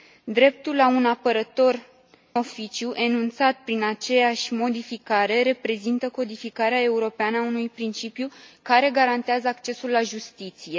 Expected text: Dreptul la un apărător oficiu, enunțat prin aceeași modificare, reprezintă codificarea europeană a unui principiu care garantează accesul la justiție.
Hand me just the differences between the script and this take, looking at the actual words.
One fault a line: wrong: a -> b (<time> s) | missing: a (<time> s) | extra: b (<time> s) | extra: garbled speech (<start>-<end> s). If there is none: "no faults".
no faults